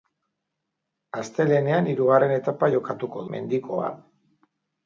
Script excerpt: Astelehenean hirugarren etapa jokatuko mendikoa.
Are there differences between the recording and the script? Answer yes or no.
no